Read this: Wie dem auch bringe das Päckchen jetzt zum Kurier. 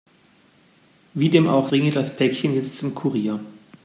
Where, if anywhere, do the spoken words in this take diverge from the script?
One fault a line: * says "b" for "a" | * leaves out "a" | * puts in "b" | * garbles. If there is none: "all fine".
all fine